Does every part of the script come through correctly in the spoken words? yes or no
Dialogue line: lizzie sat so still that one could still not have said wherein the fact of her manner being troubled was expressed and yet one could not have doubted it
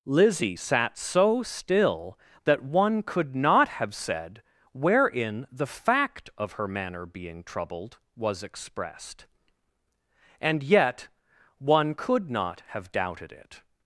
no